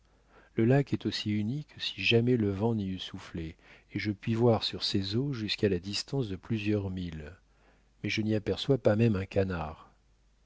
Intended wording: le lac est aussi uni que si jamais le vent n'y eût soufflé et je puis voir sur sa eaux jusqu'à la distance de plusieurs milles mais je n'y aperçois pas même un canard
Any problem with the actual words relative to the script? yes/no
yes